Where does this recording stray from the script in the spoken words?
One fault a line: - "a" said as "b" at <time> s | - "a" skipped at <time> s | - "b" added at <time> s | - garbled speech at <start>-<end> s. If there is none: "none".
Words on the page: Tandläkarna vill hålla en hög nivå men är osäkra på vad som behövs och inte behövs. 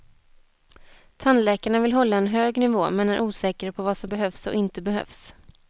none